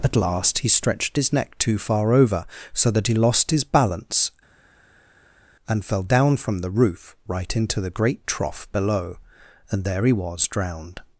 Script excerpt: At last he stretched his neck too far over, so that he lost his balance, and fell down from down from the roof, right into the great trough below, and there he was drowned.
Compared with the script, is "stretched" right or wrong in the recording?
right